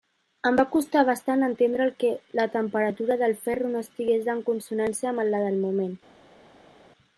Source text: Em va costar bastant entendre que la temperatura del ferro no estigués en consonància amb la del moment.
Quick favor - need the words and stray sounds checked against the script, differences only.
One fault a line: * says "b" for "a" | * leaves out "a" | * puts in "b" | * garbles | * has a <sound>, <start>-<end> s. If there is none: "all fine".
all fine